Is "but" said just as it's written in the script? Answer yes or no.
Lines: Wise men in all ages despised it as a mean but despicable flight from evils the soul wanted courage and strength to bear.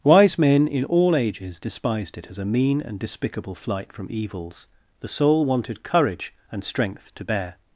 no